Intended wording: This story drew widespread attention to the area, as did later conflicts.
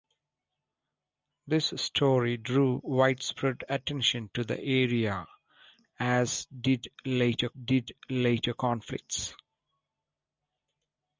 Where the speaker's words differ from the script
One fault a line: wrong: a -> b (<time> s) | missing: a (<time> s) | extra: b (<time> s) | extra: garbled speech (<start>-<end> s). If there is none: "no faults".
extra: did later (7.5 s)